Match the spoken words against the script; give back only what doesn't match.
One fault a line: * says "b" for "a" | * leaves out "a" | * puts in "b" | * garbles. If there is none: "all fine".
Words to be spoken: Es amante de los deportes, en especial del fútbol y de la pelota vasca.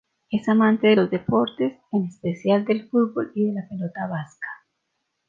all fine